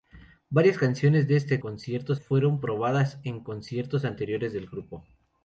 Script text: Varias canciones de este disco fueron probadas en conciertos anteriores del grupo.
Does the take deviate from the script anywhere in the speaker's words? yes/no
yes